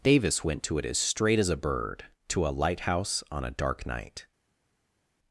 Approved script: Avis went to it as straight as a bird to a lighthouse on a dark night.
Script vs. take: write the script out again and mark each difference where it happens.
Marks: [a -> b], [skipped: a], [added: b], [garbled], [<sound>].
[Avis -> Davis] went to it as straight as a bird to a lighthouse on a dark night.